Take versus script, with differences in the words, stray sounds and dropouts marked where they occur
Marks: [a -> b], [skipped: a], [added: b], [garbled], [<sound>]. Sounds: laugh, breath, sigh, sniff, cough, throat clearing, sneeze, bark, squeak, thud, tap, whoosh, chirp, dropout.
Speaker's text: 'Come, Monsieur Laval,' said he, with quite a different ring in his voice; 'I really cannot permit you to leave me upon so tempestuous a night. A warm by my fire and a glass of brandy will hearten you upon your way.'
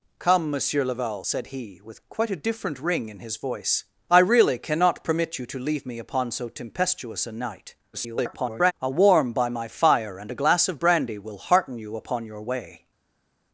'Come, Monsieur Laval,' said he, with quite a different ring in his voice; 'I really cannot permit you to leave me upon so tempestuous a night. [garbled] A warm by my fire and a glass of brandy will hearten you upon your way.'